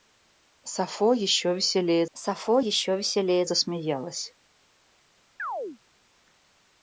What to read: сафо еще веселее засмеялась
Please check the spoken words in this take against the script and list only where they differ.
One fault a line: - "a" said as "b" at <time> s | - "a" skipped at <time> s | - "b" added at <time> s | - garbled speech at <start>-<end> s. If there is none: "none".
- "сафо еще веселее" added at 2.1 s